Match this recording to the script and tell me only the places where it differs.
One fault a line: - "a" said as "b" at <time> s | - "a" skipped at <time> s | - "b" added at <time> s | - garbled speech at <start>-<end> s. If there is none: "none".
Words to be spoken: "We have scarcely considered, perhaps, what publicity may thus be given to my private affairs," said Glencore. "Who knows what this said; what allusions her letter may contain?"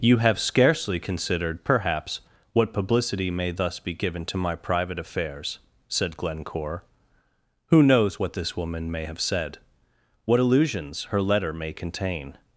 - "We" said as "You" at 0.0 s
- "woman may have" added at 8.5 s